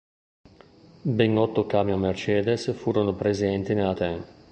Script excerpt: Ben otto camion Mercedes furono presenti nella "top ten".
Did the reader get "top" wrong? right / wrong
wrong